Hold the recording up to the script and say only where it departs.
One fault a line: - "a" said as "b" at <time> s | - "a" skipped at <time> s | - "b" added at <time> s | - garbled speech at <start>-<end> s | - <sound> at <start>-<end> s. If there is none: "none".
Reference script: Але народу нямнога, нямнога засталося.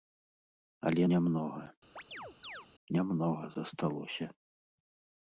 - "народу" skipped at 1.0 s
- chirp at 2.0-2.7 s